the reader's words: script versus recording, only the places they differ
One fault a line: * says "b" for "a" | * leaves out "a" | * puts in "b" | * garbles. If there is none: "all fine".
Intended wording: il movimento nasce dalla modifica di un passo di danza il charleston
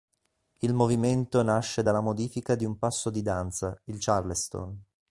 all fine